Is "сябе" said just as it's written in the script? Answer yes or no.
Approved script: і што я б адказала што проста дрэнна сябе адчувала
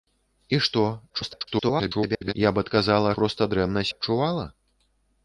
no